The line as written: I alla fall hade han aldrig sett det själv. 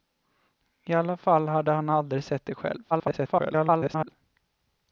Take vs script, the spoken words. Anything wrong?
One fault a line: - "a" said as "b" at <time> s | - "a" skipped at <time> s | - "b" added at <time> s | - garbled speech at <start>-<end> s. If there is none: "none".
- garbled speech at 2.9-4.1 s